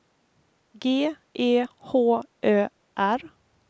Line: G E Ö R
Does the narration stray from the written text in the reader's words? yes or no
yes